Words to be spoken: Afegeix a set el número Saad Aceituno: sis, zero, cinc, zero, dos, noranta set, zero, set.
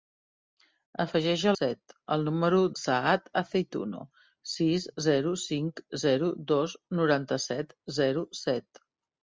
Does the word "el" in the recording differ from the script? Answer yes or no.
no